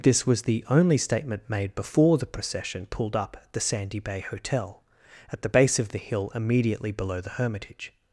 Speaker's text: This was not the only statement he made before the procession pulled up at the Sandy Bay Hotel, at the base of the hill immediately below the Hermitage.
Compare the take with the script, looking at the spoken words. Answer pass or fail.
fail